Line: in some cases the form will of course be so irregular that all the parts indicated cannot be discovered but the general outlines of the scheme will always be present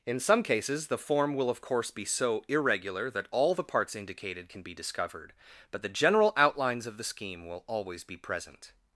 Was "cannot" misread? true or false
true